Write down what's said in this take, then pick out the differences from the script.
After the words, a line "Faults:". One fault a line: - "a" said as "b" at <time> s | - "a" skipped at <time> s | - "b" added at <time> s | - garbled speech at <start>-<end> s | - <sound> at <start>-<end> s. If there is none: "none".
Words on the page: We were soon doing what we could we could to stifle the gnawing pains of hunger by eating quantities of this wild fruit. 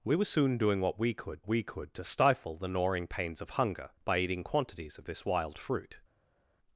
We were soon doing what we could we could to stifle the gnawing pains of hunger by eating quantities of this wild fruit.
Faults:
none